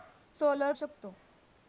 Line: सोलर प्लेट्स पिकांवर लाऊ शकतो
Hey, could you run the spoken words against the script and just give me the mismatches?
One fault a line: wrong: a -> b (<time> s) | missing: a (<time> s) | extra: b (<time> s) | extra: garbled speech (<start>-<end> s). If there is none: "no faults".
missing: प्लेट्स पिकांवर लाऊ (0.7 s)